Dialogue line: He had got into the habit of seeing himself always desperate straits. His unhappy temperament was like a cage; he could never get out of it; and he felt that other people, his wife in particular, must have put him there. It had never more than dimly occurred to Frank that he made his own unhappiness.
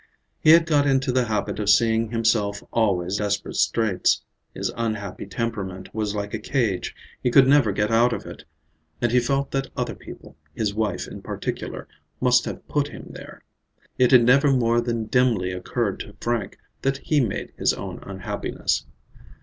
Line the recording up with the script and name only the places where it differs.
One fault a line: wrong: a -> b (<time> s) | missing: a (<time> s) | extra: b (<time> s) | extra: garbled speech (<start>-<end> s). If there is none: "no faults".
no faults